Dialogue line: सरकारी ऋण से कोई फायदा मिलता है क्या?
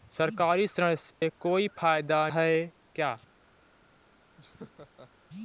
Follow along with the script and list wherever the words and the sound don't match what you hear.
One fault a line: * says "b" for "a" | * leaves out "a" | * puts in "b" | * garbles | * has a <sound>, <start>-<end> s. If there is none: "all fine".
* has a dropout, 1.1-1.2 s
* leaves out "मिलता"
* has a laugh, 4.4-5.1 s